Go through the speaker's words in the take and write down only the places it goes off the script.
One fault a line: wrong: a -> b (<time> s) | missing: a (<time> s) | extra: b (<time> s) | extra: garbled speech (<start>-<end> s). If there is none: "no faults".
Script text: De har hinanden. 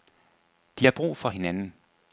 extra: brug for (0.9 s)